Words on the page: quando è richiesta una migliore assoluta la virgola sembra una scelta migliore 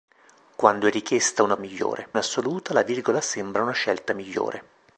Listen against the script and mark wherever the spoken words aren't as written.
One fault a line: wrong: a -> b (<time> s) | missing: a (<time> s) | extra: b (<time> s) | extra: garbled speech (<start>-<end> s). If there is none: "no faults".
no faults